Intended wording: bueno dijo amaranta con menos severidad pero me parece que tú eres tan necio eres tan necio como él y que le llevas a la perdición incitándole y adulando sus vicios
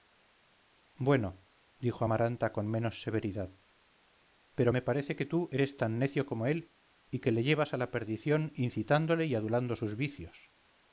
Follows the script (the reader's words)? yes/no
no